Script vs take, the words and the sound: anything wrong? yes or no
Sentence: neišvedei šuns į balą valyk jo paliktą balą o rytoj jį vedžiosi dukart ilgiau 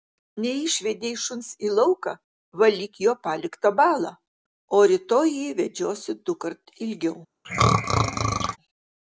yes